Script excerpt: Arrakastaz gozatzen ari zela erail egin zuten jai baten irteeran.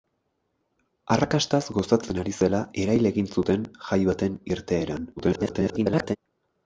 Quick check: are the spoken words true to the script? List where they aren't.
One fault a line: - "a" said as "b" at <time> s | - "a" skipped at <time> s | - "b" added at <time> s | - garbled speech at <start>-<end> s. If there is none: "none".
- garbled speech at 5.2-6.2 s